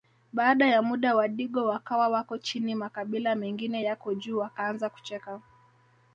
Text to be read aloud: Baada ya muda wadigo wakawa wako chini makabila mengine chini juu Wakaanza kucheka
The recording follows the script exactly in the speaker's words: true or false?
false